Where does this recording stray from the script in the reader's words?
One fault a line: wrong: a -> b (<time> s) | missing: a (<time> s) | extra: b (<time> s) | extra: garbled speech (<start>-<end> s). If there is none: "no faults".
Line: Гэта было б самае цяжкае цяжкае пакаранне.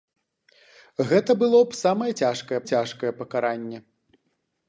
no faults